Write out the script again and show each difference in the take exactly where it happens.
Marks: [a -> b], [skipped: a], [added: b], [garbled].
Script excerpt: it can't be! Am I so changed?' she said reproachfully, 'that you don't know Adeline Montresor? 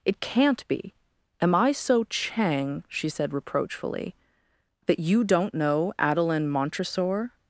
it can't be! Am I so [changed?' -> chang] she said reproachfully, 'that you don't know Adeline Montresor?